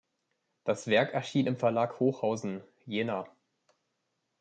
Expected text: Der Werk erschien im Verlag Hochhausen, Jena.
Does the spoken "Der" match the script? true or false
false